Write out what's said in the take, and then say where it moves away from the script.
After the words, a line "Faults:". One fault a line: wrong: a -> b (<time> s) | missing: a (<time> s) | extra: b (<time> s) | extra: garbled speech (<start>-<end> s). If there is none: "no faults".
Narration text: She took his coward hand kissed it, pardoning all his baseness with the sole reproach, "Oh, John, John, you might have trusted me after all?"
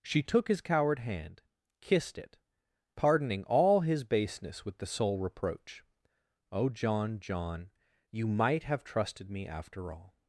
She took his coward hand kissed it, pardoning all his baseness with the sole reproach, "Oh, John, John, you might have trusted me after all?"
Faults:
no faults